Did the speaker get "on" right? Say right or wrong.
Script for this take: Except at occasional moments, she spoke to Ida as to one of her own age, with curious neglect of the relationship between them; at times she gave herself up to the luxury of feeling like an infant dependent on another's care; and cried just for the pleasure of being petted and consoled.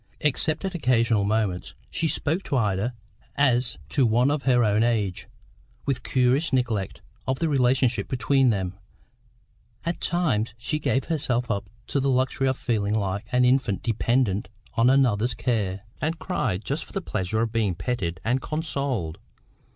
right